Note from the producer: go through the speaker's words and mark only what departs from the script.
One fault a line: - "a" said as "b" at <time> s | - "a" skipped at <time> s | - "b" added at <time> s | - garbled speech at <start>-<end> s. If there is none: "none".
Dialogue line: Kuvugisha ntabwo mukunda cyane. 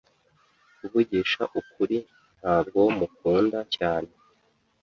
- "ukuri" added at 1.6 s